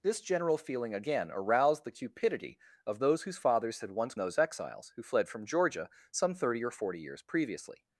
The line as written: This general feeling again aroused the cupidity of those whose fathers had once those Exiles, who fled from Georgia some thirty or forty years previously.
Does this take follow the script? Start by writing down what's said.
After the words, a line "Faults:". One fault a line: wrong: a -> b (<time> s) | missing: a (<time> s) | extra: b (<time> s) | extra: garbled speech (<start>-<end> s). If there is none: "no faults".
This general feeling again aroused the cupidity of those whose fathers had once those Exiles, who fled from Georgia some thirty or forty years previously.
Faults:
no faults